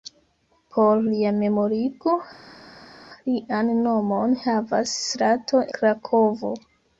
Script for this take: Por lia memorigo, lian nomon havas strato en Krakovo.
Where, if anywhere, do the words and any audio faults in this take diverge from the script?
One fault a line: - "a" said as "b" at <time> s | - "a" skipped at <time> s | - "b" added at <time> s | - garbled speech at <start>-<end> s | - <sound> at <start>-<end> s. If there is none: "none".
- "en" skipped at 5.6 s